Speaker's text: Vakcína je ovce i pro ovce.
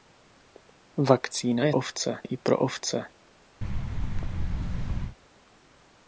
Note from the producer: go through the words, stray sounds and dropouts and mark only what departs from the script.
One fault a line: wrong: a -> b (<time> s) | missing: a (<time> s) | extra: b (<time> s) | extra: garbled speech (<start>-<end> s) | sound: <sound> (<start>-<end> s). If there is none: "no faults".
sound: thud (3.6-5.2 s)